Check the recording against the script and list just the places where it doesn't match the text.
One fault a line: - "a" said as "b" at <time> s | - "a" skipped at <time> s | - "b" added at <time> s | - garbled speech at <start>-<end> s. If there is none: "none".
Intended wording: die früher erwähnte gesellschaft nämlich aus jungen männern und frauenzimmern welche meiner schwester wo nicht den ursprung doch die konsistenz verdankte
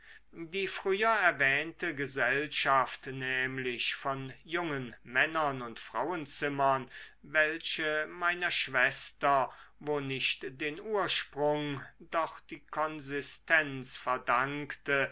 - "aus" said as "von" at 4.0 s